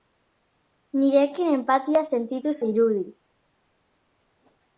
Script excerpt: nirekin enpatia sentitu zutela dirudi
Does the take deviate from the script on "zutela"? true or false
true